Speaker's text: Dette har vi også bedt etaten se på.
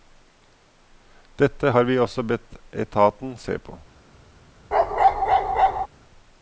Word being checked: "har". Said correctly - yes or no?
yes